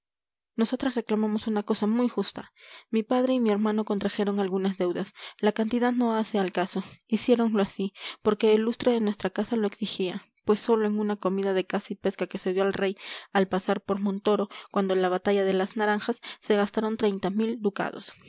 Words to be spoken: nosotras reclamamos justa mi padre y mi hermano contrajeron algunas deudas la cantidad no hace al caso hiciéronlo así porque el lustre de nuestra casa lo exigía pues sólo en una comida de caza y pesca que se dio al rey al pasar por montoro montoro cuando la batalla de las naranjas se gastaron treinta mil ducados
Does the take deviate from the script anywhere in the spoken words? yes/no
yes